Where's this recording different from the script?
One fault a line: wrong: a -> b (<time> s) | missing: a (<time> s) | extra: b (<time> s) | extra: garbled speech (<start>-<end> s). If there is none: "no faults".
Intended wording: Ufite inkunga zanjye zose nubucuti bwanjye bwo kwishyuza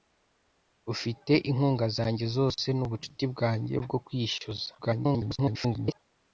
extra: garbled speech (4.8-6.0 s)